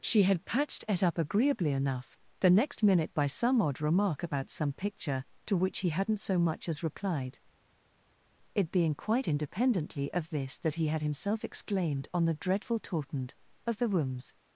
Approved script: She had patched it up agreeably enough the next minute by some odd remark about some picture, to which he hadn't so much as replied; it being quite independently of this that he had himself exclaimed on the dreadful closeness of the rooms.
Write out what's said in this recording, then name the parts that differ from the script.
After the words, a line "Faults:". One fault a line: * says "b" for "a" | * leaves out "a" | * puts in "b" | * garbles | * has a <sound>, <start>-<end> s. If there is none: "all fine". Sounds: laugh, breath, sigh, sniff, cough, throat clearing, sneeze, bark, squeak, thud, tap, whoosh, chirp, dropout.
She had patched it up agreeably enough the next minute by some odd remark about some picture, to which he hadn't so much as replied; it being quite independently of this that he had himself exclaimed on the dreadful tautened of the rooms.
Faults:
* says "tautened" for "closeness"